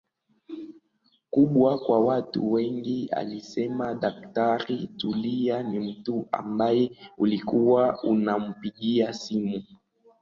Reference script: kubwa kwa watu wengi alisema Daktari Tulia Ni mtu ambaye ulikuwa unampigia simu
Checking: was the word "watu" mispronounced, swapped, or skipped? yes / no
no